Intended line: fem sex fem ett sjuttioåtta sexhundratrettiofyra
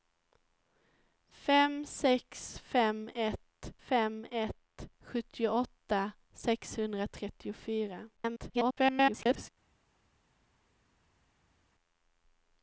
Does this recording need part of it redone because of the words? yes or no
yes